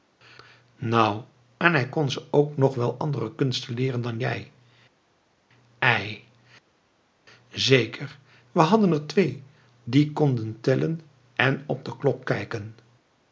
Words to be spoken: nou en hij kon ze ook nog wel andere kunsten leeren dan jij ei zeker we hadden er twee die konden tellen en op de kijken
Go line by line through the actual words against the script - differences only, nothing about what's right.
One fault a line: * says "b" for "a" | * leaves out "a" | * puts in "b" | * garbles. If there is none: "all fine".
* puts in "klok"